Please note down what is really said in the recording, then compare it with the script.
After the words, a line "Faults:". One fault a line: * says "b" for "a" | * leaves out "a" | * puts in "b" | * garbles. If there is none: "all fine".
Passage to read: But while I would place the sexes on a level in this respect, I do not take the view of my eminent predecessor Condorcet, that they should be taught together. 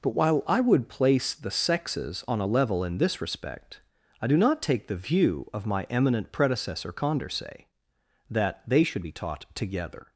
But while I would place the sexes on a level in this respect, I do not take the view of my eminent predecessor Condorcet, that they should be taught together.
Faults:
all fine